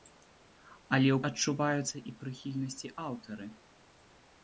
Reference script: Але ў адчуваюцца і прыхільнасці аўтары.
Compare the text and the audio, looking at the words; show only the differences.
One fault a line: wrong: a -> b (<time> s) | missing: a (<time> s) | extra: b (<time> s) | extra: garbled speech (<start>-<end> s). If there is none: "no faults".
no faults